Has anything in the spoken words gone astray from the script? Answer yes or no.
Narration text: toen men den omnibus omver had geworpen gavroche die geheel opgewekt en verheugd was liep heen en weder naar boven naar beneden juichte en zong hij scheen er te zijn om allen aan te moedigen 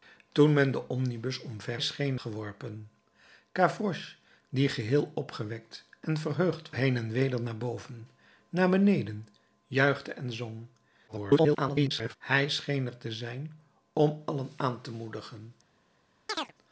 yes